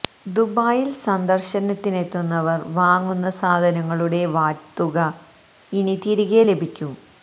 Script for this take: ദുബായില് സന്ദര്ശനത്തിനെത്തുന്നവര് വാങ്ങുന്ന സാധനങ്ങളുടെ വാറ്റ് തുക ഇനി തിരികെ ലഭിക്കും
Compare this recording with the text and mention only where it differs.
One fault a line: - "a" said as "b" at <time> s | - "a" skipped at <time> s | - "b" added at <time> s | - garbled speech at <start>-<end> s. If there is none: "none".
none